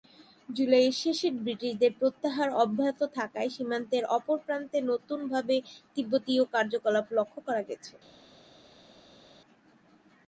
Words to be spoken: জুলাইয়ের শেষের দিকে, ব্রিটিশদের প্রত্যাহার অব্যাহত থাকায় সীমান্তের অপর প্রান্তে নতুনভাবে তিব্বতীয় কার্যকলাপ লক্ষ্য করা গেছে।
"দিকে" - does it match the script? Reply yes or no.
no